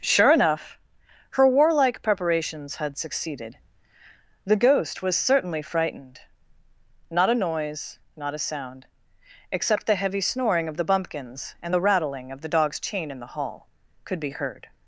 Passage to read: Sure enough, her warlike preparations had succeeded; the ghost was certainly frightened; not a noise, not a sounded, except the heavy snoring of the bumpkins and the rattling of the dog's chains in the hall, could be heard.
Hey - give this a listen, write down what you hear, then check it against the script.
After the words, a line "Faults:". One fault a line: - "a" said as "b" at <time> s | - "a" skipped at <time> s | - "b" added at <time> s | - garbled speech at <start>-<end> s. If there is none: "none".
Sure enough, her warlike preparations had succeeded; the ghost was certainly frightened; not a noise, not a sound, except the heavy snoring of the bumpkins and the rattling of the dog's chain in the hall, could be heard.
Faults:
- "sounded" said as "sound" at 8.4 s
- "chains" said as "chain" at 12.8 s